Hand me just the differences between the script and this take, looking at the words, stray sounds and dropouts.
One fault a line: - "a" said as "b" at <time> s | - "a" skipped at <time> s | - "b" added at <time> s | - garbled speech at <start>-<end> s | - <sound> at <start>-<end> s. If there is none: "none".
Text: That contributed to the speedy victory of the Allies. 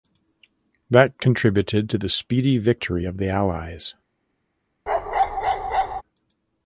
- bark at 4.9-6.0 s